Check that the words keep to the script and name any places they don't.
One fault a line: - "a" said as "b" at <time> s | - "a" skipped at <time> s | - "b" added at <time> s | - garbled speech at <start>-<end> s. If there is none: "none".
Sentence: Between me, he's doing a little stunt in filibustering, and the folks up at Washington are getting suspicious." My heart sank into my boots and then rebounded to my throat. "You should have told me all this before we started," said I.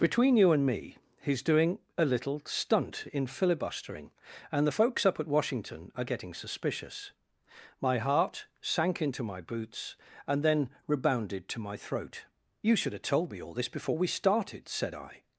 - "you and" added at 0.3 s